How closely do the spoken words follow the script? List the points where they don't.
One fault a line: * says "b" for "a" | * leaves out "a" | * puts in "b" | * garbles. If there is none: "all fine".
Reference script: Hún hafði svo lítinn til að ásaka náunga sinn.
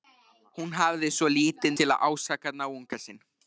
all fine